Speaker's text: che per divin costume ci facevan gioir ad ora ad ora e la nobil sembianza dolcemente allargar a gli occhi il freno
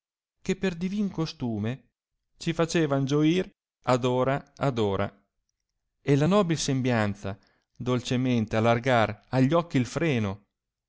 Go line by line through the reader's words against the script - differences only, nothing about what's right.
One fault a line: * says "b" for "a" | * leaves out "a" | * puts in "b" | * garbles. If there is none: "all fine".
all fine